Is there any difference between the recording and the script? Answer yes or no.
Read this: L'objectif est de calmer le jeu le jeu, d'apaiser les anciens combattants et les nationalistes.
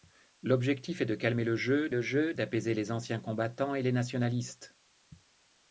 no